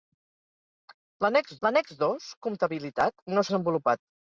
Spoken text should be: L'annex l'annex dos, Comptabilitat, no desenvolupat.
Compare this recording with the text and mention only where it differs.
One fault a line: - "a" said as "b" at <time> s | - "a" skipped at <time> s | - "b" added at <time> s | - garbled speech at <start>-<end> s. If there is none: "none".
none